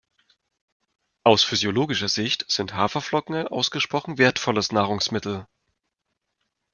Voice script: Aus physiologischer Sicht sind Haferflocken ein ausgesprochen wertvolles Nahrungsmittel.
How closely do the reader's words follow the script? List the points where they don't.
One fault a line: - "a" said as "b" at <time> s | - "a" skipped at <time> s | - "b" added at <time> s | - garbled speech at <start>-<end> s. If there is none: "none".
none